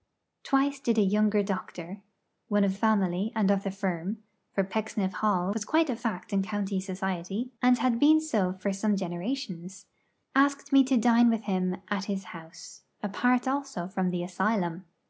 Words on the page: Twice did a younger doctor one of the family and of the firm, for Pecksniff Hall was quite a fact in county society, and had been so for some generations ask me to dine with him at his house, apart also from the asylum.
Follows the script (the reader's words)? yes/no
no